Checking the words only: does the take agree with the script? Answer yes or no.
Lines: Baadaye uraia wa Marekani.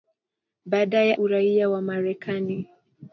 yes